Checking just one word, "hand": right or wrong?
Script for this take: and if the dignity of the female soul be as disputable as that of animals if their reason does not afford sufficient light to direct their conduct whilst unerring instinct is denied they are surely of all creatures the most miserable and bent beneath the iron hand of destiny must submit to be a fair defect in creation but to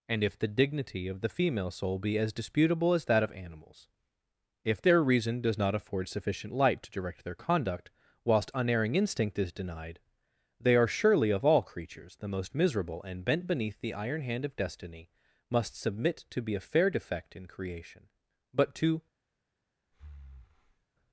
right